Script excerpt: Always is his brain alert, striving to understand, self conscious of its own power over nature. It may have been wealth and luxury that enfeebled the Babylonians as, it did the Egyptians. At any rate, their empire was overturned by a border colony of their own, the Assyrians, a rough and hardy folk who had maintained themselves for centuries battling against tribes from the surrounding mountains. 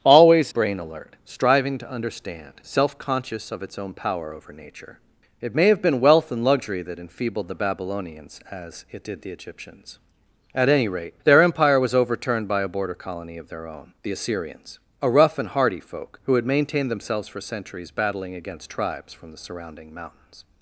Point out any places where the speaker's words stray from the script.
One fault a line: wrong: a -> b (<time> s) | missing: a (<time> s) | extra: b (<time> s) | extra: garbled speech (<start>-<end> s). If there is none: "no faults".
missing: is his (0.5 s)